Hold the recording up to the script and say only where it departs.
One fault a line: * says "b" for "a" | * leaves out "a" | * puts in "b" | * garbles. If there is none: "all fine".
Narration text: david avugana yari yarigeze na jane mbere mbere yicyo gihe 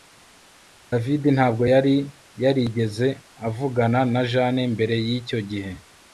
* says "ntabwo" for "avugana"
* puts in "avugana"
* leaves out "mbere"